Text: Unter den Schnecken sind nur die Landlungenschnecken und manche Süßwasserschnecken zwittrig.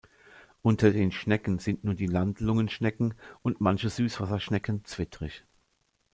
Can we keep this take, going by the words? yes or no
yes